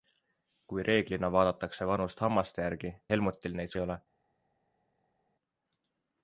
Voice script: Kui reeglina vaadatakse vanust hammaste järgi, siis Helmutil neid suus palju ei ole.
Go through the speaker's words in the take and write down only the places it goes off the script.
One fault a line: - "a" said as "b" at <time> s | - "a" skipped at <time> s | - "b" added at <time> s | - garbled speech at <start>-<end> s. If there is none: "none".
- "siis" skipped at 2.9 s
- "suus palju" skipped at 3.7 s